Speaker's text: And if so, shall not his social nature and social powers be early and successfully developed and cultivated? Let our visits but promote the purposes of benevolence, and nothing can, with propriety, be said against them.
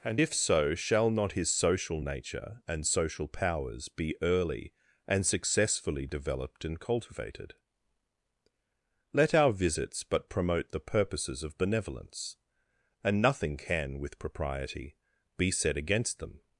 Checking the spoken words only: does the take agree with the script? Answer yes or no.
yes